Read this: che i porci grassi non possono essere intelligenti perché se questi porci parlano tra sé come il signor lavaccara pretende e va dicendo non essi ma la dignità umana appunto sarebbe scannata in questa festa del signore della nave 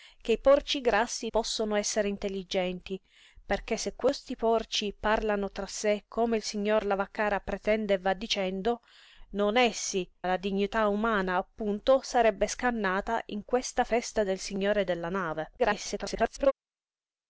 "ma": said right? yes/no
no